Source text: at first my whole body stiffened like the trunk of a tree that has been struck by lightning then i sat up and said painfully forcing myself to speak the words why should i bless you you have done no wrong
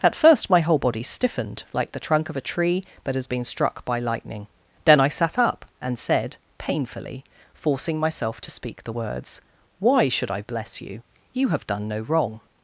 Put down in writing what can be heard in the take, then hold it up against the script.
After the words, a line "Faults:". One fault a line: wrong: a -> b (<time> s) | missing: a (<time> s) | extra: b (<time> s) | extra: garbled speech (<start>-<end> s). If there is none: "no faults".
at first my whole body stiffened like the trunk of a tree that has been struck by lightning then i sat up and said painfully forcing myself to speak the words why should i bless you you have done no wrong
Faults:
no faults